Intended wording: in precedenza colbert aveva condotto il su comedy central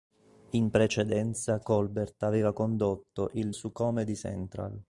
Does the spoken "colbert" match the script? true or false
true